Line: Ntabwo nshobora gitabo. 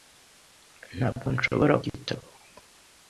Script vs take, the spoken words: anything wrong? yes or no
no